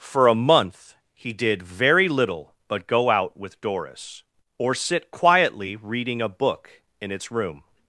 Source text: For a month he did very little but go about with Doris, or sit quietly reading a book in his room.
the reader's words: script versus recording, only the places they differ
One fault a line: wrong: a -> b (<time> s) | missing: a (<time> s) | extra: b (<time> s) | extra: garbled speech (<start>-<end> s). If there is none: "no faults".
wrong: about -> out (3.1 s)
wrong: his -> its (7.1 s)